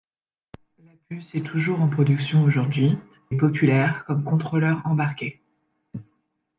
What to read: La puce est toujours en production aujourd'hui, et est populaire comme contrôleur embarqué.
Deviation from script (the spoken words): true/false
true